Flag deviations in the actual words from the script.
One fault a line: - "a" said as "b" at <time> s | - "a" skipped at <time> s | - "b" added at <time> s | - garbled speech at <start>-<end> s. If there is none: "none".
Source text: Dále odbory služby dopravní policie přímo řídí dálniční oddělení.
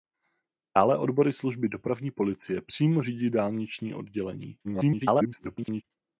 - garbled speech at 4.6-5.8 s